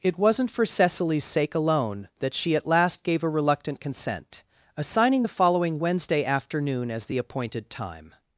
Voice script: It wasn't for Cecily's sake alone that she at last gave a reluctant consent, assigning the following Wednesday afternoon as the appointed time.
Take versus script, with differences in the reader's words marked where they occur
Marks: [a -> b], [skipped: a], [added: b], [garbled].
It wasn't for Cecily's sake alone that she at last gave a reluctant consent, assigning the following Wednesday afternoon as the appointed time.